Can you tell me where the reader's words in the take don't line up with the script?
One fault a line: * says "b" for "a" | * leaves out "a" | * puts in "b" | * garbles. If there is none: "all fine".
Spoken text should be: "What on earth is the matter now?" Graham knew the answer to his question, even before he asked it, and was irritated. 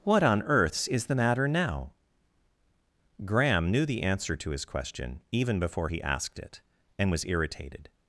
* says "earths" for "earth"